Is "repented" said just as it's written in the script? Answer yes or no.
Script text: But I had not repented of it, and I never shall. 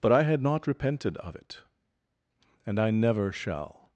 yes